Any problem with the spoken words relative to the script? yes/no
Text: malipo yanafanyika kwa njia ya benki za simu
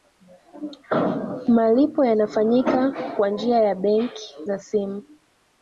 no